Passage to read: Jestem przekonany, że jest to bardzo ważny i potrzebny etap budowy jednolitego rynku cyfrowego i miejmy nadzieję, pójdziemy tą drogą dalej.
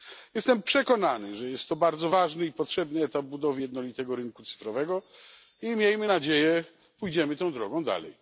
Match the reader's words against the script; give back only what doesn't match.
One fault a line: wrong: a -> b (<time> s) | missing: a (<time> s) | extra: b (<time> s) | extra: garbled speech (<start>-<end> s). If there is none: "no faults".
no faults